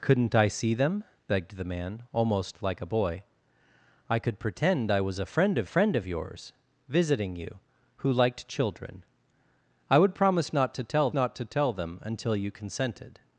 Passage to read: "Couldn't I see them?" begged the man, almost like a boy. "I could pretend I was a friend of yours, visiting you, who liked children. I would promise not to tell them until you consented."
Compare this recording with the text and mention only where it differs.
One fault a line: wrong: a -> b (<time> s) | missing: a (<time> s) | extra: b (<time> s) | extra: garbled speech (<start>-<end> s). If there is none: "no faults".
extra: friend of (5.6 s)
extra: not to tell (11.1 s)